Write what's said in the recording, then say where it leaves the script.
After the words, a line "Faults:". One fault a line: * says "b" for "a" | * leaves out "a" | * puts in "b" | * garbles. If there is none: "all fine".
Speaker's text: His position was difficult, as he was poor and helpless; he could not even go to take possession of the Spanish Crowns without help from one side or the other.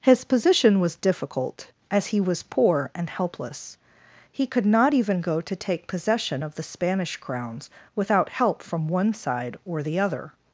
His position was difficult, as he was poor and helpless; he could not even go to take possession of the Spanish Crowns without help from one side or the other.
Faults:
all fine